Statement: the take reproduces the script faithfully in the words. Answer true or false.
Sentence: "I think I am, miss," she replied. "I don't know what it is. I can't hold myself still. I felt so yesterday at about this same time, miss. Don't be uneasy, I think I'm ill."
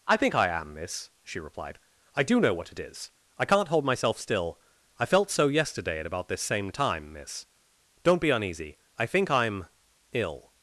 false